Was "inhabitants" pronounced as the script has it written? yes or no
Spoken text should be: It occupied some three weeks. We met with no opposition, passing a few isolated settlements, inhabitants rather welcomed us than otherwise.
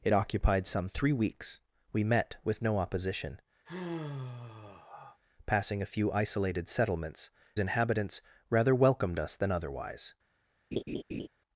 yes